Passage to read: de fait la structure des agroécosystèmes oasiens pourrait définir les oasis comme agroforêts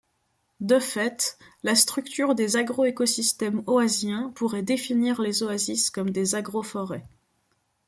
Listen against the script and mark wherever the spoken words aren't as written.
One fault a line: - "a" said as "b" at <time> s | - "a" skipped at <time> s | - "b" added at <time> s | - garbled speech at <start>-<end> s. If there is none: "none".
- "des" added at 6.1 s